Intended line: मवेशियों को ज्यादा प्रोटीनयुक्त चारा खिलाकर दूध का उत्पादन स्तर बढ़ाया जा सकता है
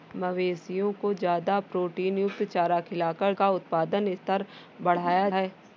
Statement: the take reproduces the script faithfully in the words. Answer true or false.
false